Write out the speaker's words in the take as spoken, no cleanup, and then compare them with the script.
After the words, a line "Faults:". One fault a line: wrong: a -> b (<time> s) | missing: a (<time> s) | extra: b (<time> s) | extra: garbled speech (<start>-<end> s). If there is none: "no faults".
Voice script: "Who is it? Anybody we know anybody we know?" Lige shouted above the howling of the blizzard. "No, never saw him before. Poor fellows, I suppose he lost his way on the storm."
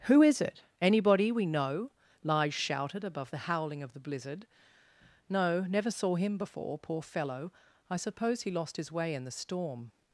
"Who is it? Anybody we know?" Lige shouted above the howling of the blizzard. "No, never saw him before. Poor fellow, I suppose he lost his way in the storm."
Faults:
missing: anybody we know (1.9 s)
wrong: fellows -> fellow (7.0 s)
wrong: on -> in (9.1 s)